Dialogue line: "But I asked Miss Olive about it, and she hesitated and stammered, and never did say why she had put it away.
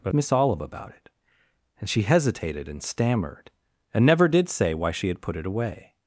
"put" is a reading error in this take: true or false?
false